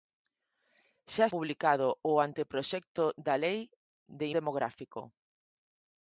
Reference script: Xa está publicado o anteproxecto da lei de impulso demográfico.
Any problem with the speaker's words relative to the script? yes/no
yes